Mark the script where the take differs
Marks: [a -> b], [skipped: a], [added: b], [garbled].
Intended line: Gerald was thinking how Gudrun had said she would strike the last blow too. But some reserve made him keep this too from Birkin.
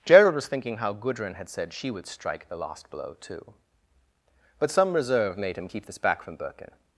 Gerald was thinking how Gudrun had said she would strike the last blow too. But some reserve made him keep this [too -> back] from Birkin.